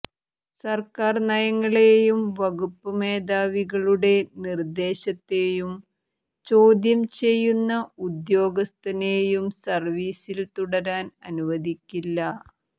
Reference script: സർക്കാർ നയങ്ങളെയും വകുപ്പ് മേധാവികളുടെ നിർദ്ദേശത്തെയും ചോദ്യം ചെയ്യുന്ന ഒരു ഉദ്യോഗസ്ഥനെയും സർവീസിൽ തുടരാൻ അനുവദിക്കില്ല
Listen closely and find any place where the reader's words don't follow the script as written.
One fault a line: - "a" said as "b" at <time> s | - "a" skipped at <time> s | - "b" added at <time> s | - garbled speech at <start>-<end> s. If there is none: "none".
- "ഒരു" skipped at 7.7 s